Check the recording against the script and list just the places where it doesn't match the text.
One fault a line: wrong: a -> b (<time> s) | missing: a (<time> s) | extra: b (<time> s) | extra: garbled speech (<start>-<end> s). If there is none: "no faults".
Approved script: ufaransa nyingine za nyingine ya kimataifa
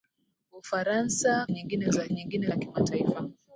no faults